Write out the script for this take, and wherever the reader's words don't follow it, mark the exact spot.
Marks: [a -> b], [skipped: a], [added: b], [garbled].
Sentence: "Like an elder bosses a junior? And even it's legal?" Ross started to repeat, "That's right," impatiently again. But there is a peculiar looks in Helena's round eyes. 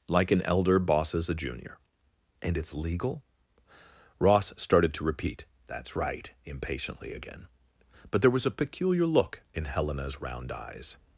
"Like an elder bosses a junior? And [skipped: even] it's legal?" Ross started to repeat, "That's right," impatiently again. But there [is -> was] a peculiar [looks -> look] in Helena's round eyes.